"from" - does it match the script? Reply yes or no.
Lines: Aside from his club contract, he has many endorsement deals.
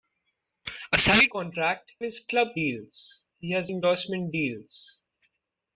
no